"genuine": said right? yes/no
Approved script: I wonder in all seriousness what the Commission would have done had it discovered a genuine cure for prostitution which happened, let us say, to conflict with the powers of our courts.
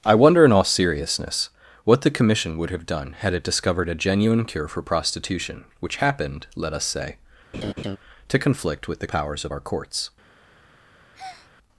yes